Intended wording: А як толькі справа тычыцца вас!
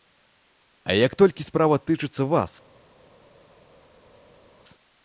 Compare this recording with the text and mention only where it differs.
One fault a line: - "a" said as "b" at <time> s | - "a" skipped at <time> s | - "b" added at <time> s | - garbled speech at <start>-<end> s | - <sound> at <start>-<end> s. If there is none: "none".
none